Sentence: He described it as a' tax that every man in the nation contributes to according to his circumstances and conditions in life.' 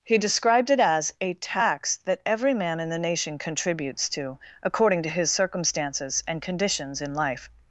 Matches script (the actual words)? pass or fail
pass